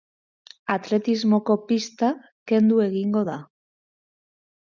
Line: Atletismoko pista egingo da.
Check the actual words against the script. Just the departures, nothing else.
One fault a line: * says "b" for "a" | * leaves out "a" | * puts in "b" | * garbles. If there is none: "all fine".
* puts in "kendu"